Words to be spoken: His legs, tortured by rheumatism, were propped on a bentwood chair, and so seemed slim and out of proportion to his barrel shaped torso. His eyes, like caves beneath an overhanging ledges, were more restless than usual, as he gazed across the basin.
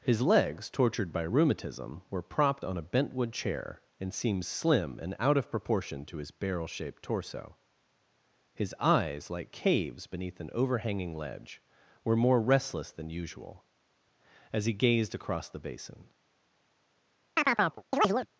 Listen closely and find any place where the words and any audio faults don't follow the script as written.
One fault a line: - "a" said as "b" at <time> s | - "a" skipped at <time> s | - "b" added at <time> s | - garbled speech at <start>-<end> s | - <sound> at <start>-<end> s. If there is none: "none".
- "so" skipped at 4.1 s
- "ledges" said as "ledge" at 11.2 s
- chirp at 17.4-18.3 s